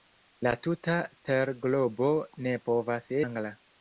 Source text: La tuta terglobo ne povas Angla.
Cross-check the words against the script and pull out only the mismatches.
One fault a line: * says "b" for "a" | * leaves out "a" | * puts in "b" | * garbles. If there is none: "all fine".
all fine